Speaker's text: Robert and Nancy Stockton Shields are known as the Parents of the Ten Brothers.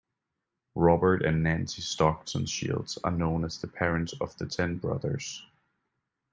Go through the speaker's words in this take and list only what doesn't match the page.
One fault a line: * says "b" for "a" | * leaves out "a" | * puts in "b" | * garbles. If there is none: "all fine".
all fine